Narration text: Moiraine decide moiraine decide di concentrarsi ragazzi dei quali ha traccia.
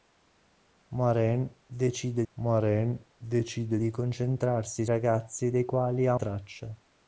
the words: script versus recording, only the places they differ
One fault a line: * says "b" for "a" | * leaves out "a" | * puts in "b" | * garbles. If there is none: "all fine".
all fine